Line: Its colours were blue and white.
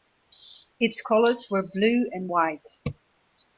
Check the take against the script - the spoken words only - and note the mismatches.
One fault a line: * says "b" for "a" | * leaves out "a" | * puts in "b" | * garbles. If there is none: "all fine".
all fine